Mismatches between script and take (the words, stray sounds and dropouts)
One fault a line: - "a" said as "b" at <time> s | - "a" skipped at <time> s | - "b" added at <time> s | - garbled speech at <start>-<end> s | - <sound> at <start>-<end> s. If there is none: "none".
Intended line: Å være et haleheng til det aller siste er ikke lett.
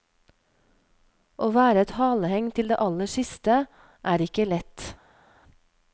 none